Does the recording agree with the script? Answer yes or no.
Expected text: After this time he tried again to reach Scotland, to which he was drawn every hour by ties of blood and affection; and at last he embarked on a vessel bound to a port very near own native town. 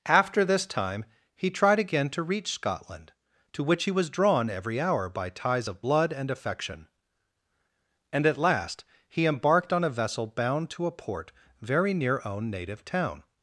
yes